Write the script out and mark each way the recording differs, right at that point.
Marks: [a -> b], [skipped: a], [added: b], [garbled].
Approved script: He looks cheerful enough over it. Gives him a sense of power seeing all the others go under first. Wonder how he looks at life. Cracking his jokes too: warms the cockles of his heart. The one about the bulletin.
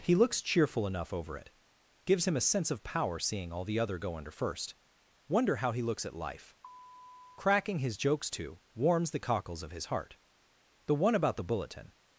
He looks cheerful enough over it. Gives him a sense of power seeing all the [others -> other] go under first. Wonder how he looks at life. Cracking his jokes too: warms the cockles of his heart. The one about the bulletin.